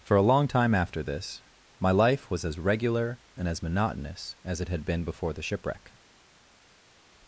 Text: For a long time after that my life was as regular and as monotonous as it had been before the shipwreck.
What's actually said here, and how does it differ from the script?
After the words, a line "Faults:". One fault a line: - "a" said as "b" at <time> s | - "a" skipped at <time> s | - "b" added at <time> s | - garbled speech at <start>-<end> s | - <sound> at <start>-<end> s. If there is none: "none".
For a long time after this my life was as regular and as monotonous as it had been before the shipwreck.
Faults:
- "that" said as "this" at 1.0 s